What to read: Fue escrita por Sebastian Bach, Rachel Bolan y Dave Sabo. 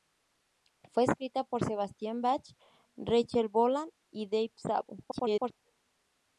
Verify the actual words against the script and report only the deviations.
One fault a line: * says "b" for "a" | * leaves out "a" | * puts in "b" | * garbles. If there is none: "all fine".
* garbles